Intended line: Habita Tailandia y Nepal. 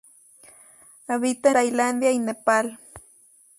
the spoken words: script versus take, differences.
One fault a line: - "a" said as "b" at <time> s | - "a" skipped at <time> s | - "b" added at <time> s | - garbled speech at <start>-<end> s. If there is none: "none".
none